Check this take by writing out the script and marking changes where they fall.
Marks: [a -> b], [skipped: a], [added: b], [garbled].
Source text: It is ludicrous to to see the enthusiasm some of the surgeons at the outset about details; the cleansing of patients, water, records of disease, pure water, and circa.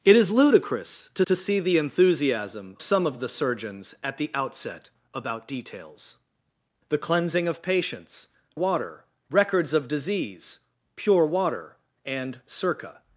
It is ludicrous to to see the enthusiasm some of the surgeons at the outset about details; the cleansing of patients, water, records of disease, pure water, and circa.